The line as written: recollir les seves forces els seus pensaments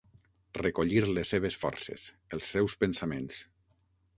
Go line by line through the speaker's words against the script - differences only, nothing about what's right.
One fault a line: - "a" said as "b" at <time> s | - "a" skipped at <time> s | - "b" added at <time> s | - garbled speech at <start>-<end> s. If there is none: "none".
none